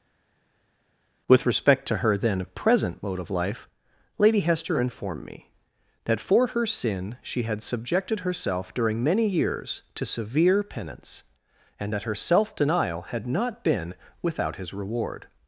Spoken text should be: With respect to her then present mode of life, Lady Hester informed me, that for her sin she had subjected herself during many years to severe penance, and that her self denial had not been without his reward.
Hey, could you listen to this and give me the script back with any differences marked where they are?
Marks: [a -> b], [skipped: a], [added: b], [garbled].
With respect to her then present mode of life, Lady Hester informed me, that for her sin she had subjected herself during many years to severe penance, and that her self denial had not been without his reward.